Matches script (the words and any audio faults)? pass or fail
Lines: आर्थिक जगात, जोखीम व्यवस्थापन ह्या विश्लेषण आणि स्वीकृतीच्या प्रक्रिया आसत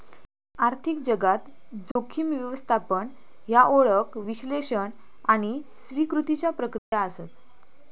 fail